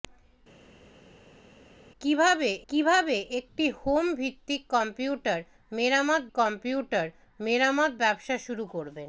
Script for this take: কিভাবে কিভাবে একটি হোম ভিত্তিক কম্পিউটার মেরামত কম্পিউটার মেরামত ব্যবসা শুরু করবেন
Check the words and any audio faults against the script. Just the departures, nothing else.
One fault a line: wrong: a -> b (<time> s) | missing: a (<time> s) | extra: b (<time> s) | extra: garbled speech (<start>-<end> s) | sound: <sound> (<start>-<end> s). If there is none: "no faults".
no faults